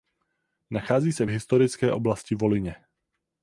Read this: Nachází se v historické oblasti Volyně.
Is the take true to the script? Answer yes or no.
yes